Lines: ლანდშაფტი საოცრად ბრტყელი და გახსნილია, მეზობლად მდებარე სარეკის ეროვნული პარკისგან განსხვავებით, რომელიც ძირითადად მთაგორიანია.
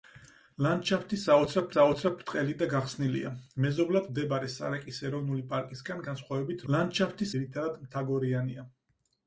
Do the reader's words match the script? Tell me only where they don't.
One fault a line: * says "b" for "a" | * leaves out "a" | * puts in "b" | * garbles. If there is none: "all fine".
* puts in "საოცრად"
* says "ლანდშაფტი" for "რომელიც"